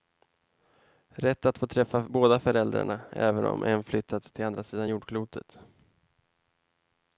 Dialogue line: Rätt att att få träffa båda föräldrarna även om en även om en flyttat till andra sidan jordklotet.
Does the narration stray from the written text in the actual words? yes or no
yes